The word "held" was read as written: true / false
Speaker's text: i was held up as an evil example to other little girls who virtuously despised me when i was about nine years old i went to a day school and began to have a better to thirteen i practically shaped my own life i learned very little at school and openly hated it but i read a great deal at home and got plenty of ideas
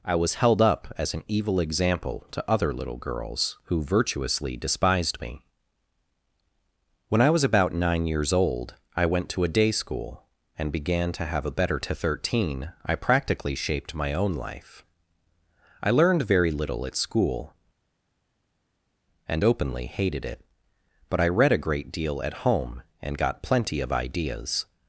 true